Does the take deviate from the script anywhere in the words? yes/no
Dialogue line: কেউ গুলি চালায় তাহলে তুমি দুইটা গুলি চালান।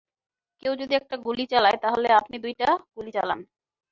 yes